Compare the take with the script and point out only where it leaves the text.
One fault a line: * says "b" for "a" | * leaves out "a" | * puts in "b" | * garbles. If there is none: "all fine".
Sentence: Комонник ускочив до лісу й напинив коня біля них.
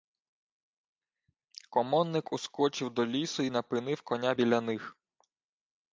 all fine